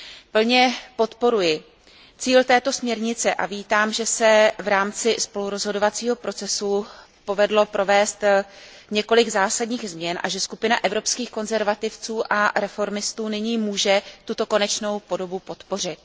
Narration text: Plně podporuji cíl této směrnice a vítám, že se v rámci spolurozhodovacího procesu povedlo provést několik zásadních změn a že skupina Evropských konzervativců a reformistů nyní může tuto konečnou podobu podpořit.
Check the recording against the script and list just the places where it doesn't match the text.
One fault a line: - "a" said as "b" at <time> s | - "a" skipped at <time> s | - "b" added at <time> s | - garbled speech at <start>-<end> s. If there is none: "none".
none